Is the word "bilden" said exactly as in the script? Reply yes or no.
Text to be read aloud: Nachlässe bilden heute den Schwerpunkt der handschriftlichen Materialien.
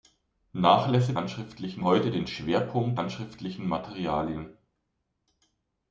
no